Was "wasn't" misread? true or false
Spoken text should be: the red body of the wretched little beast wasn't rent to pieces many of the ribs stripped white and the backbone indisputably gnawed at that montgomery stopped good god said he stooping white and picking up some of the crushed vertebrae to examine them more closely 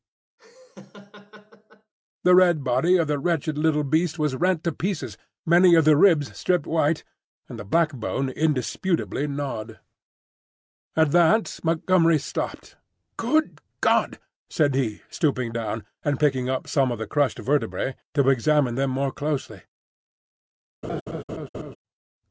true